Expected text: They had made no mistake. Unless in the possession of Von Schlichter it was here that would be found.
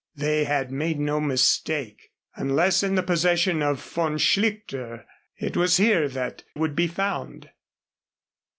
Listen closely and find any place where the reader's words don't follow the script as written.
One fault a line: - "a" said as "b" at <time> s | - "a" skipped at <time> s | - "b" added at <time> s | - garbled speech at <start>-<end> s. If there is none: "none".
none